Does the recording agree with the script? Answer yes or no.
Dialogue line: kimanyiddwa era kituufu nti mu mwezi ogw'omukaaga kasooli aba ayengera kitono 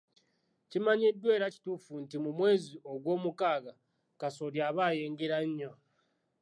no